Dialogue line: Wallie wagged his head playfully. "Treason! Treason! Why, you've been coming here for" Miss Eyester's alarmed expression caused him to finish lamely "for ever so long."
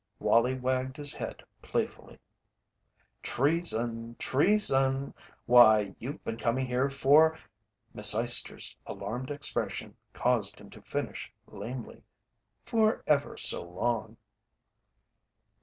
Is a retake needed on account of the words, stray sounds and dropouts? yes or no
no